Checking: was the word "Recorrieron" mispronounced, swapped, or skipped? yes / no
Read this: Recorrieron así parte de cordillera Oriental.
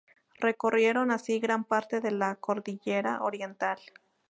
no